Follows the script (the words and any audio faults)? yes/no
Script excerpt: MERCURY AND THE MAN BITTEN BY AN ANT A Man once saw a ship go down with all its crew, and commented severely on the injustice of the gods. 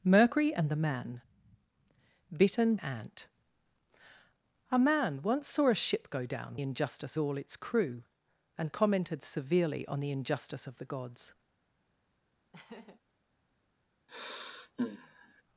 no